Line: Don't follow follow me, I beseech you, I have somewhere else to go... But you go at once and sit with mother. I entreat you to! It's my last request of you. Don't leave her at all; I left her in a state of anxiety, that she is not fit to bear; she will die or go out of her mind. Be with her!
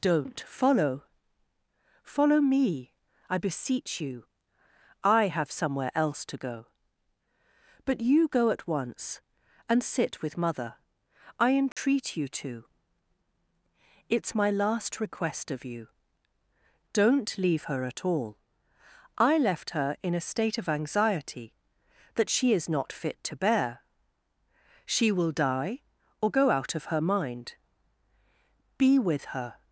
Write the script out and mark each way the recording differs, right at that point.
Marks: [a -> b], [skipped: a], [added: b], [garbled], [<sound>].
Don't follow follow me, I beseech you, I have somewhere else to go... But you go at once and sit with mother. I entreat [dropout] you to! It's my last request of you. Don't leave her at all; I left her in a state of anxiety, that she is not fit to bear; she will die or go out of her mind. Be with her!